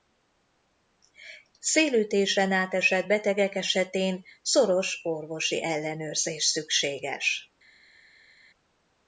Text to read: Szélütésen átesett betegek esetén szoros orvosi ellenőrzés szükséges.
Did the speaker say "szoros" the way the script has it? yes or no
yes